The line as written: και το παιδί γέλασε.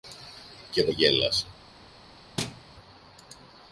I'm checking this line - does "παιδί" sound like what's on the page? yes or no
no